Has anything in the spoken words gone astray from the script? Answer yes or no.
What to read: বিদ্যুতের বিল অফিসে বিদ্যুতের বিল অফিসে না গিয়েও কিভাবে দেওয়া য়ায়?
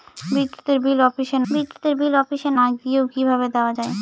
no